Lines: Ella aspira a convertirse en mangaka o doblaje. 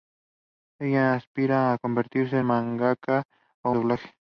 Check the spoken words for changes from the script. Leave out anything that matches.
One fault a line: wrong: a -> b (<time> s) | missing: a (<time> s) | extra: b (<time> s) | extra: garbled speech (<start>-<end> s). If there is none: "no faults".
no faults